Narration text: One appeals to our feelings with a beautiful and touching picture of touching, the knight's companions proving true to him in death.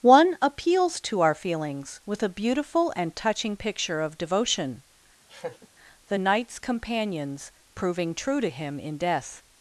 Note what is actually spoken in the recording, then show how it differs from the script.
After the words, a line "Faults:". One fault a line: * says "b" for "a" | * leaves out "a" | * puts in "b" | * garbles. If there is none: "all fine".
One appeals to our feelings with a beautiful and touching picture of devotion, the knight's companions proving true to him in death.
Faults:
* says "devotion" for "touching"